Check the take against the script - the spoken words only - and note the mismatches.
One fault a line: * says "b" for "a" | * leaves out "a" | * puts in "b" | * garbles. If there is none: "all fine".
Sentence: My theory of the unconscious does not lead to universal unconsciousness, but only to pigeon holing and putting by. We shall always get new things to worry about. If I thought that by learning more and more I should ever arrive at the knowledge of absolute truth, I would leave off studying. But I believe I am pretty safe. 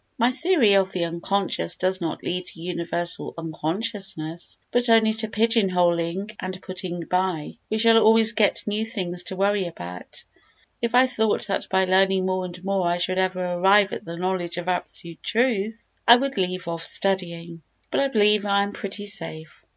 all fine